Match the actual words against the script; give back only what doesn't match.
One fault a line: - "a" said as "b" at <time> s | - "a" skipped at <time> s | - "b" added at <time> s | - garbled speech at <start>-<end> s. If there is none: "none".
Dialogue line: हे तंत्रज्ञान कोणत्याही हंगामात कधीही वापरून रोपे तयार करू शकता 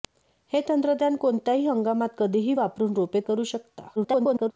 - "तयार" skipped at 3.2 s
- garbled speech at 4.0-4.5 s